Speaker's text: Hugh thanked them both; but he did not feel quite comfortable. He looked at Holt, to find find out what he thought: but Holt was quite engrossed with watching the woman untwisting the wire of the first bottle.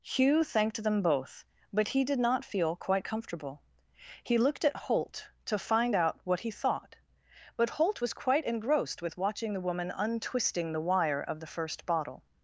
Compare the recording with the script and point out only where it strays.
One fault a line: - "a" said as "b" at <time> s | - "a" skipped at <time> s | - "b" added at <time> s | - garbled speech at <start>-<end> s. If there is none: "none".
- "find" skipped at 6.0 s